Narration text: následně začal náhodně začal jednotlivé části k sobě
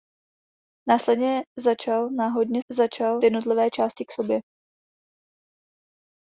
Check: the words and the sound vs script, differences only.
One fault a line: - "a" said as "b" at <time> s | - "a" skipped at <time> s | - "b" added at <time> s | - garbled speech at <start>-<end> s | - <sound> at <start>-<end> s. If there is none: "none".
none